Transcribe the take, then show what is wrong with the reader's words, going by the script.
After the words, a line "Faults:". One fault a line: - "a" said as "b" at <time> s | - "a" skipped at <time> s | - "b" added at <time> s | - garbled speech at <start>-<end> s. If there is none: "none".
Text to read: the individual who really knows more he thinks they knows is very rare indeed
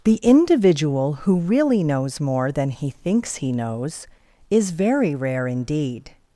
the individual who really knows more than he thinks he knows is very rare indeed
Faults:
- "than" added at 2.5 s
- "they" said as "he" at 3.4 s